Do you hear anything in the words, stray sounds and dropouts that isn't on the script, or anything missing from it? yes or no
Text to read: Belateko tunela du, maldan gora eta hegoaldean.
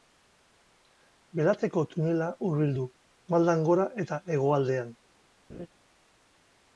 yes